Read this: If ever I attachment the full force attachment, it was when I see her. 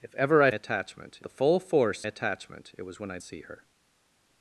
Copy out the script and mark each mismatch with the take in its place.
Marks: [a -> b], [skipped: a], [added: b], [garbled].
If ever I attachment the full force attachment, it was when I see her.